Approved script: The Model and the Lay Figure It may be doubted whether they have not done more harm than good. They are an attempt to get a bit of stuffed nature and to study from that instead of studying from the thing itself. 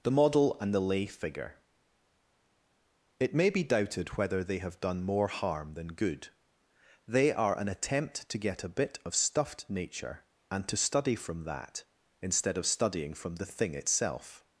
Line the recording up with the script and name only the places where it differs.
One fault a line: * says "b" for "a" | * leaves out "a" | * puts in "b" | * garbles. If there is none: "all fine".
* leaves out "not"